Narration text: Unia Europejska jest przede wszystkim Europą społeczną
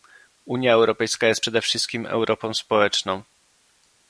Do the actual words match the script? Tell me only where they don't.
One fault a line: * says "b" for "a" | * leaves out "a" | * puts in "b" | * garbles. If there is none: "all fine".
all fine